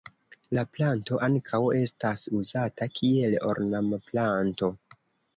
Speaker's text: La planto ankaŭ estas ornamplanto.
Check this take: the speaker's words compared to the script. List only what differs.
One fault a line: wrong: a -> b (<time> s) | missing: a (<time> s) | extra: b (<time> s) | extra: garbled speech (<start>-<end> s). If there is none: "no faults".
extra: uzata kiel (2.4 s)